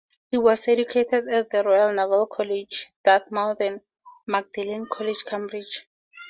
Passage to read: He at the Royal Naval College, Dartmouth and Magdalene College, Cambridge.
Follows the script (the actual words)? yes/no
no